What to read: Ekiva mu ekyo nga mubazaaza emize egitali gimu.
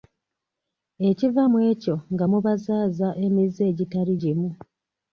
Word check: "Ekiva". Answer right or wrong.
right